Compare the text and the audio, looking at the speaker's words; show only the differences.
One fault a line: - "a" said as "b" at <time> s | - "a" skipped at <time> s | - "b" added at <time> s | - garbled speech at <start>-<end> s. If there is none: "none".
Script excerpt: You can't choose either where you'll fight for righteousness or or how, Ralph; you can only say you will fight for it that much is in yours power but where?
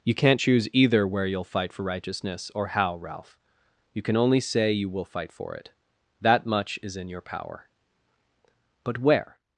- "or" skipped at 2.7 s
- "yours" said as "your" at 7.1 s